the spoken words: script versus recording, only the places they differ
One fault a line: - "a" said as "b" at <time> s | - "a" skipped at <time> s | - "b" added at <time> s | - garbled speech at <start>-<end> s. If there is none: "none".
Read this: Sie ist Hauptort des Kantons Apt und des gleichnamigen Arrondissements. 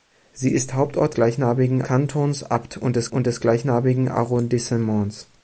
- "des" said as "gleichnamigen" at 1.1 s
- "und des" added at 3.1 s